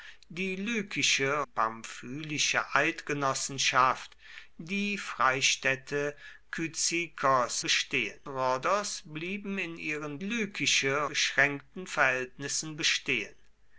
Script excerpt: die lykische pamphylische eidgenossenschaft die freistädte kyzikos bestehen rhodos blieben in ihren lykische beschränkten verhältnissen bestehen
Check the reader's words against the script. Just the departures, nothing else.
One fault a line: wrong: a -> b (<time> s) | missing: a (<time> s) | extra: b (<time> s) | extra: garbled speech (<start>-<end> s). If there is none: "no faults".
no faults